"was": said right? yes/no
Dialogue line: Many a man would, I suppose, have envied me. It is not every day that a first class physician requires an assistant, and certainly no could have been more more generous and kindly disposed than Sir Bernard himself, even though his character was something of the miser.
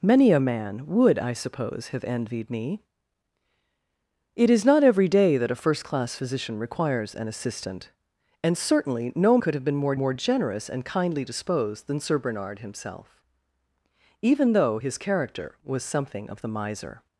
yes